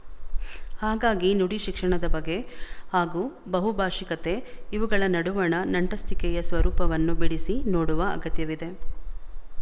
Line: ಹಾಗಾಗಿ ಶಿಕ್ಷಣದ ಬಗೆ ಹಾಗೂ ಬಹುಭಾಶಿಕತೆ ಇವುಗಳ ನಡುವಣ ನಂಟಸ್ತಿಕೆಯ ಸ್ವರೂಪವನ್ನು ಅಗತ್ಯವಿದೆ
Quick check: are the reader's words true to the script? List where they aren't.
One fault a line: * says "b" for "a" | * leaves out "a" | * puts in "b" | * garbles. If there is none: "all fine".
* puts in "ನುಡಿ"
* puts in "ಬಿಡಿಸಿ ನೋಡುವ"